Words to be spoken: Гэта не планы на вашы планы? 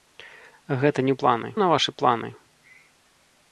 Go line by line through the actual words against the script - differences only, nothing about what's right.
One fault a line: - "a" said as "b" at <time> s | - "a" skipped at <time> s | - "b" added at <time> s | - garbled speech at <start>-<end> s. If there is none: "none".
none